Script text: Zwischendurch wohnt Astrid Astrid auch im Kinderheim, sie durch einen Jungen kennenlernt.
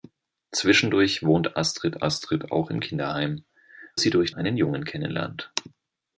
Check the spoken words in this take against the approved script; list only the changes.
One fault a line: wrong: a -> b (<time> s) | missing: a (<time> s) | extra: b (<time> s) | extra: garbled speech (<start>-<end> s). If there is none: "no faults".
no faults